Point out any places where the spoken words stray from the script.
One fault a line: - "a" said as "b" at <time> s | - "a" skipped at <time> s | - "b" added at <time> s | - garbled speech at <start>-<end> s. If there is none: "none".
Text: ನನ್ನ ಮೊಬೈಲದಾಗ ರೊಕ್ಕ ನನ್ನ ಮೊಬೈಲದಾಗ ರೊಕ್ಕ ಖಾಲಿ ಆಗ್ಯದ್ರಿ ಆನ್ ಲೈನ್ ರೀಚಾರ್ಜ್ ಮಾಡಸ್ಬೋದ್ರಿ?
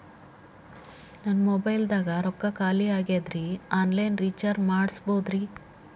- "ನನ್ನ ಮೊಬೈಲದಾಗ ರೊಕ್ಕ" skipped at 2.5 s